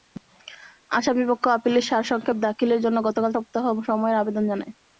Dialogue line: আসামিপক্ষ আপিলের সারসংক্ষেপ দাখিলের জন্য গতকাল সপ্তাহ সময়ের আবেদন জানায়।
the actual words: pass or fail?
pass